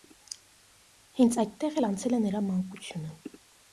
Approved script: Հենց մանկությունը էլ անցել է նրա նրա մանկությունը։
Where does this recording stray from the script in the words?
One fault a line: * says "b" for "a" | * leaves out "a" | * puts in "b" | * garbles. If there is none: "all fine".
* says "այդտեղ" for "մանկությունը"
* leaves out "նրա"